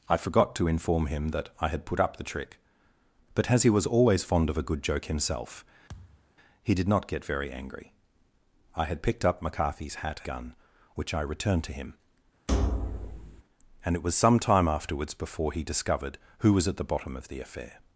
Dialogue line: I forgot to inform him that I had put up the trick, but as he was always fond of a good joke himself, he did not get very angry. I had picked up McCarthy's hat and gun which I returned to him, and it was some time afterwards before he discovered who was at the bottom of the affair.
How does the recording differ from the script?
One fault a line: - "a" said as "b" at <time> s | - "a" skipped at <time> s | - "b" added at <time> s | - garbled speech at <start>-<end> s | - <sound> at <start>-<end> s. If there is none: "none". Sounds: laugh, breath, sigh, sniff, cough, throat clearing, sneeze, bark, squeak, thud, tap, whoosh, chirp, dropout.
- thud at 5.9-6.3 s
- "and" skipped at 10.2 s
- thud at 12.5-13.4 s